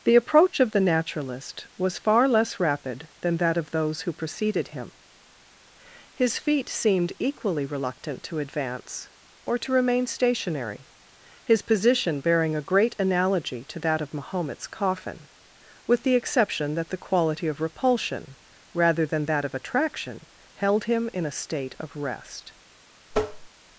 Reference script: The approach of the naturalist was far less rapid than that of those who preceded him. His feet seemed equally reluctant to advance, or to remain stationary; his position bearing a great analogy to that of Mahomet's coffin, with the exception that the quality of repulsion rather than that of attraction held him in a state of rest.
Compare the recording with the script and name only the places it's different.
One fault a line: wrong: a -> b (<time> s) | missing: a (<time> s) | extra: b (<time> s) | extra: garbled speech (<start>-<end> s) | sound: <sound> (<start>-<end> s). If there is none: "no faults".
sound: tap (23.1-23.5 s)